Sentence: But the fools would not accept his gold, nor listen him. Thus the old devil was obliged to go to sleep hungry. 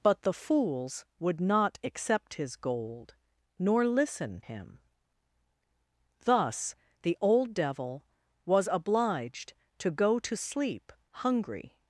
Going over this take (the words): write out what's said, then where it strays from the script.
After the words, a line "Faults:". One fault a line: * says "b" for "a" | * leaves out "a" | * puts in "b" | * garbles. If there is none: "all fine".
But the fools would not accept his gold, nor listen him. Thus the old devil was obliged to go to sleep hungry.
Faults:
all fine